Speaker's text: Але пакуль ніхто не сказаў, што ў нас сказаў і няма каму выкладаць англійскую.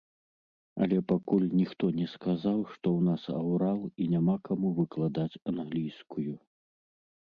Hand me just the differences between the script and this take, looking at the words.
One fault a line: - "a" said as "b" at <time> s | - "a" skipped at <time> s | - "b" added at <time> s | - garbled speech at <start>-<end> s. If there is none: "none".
- "сказаў" said as "аўрал" at 3.4 s